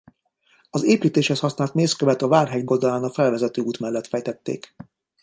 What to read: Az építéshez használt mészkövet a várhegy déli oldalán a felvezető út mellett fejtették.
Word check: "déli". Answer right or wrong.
wrong